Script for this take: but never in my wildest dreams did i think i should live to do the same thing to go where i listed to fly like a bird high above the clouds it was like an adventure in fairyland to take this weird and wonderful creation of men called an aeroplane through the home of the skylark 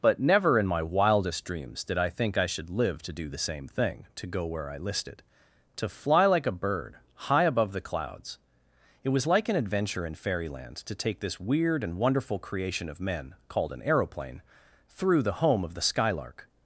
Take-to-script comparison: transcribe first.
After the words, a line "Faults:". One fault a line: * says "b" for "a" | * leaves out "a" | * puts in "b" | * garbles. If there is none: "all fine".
but never in my wildest dreams did i think i should live to do the same thing to go where i listed to fly like a bird high above the clouds it was like an adventure in fairyland to take this weird and wonderful creation of men called an aeroplane through the home of the skylark
Faults:
all fine